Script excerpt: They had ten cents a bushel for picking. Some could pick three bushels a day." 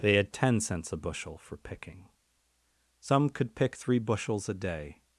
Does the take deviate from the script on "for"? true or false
false